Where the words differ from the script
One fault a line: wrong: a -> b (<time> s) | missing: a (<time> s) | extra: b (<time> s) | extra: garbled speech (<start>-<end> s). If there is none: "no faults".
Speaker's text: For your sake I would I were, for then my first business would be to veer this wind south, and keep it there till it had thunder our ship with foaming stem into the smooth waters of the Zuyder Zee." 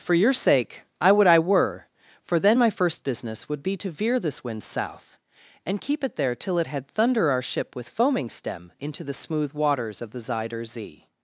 no faults